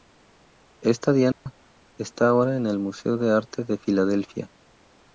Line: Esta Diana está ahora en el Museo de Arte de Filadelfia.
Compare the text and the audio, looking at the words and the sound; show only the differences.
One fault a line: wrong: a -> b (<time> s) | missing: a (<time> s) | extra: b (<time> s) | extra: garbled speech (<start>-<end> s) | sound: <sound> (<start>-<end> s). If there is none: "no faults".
sound: dropout (1.3-1.5 s)